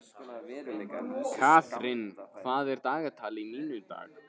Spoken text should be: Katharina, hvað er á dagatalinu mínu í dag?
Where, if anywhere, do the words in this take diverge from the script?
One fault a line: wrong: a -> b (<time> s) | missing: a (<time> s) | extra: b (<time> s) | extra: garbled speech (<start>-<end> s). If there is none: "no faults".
no faults